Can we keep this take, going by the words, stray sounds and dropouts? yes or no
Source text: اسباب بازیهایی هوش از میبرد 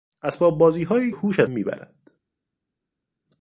yes